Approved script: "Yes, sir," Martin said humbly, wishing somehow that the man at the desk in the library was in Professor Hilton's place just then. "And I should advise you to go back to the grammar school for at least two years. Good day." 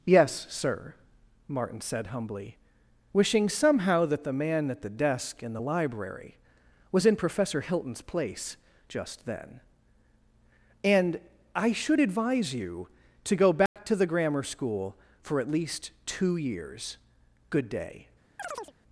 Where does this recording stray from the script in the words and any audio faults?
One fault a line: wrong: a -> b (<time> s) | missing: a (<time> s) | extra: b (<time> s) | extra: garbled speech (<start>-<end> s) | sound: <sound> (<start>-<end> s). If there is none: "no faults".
sound: dropout (13.7-13.8 s)
sound: chirp (18.4-18.7 s)